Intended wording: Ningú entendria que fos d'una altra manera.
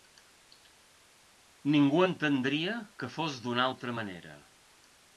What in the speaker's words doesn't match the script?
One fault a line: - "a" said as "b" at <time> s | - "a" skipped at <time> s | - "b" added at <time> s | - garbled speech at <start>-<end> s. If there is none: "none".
none